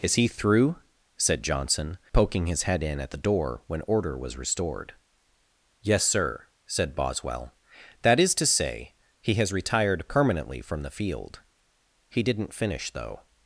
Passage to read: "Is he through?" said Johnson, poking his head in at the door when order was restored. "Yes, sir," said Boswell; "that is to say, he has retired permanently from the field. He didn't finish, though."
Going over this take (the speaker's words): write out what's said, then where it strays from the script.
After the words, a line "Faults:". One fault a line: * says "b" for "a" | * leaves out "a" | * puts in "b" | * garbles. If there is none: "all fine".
"Is he through?" said Johnson, poking his head in at the door when order was restored. "Yes, sir," said Boswell; "that is to say, he has retired permanently from the field. He didn't finish, though."
Faults:
all fine